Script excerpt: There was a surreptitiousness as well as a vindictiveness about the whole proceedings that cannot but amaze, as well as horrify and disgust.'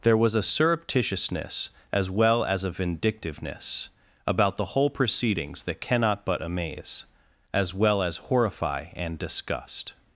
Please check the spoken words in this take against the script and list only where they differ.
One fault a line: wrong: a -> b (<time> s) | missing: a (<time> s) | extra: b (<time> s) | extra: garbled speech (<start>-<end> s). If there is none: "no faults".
no faults